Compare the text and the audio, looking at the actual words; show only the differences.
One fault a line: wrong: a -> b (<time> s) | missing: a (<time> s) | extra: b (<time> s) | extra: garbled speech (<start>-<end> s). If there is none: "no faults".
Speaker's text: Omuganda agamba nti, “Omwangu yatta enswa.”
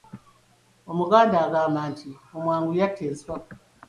no faults